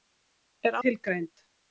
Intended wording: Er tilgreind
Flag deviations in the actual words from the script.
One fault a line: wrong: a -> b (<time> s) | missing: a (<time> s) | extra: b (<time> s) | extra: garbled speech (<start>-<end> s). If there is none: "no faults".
no faults